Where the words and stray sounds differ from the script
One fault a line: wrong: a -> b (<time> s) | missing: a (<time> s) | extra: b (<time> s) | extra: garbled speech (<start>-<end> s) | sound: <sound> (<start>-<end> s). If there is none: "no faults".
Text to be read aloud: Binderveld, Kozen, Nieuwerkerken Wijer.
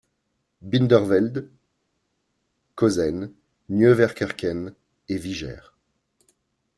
extra: et (5.1 s)